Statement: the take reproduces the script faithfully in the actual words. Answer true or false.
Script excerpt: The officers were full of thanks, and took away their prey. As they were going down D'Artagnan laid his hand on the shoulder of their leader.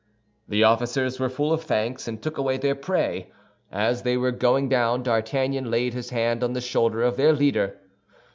true